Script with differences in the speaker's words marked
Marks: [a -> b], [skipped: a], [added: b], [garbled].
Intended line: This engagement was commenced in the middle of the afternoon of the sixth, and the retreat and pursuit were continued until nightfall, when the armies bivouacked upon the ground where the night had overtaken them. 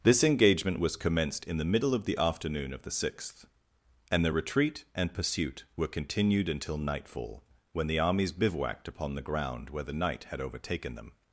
This engagement was commenced in the middle of the afternoon of the sixth, and the retreat and pursuit were continued until nightfall, when the armies bivouacked upon the ground where the night had overtaken them.